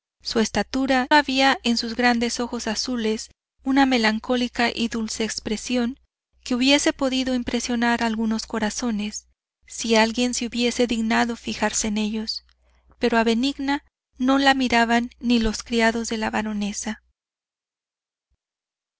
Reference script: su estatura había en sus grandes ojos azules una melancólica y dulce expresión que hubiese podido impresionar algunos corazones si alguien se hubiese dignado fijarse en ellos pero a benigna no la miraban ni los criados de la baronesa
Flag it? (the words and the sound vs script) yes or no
no